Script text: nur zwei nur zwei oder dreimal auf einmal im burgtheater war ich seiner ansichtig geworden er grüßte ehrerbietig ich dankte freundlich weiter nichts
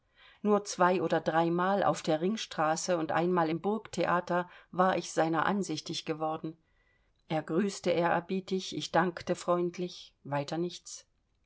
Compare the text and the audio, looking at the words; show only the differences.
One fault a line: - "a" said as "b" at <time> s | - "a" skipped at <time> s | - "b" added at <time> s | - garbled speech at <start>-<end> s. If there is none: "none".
- "nur zwei" skipped at 1.0 s
- "der ringstraße und" added at 2.0 s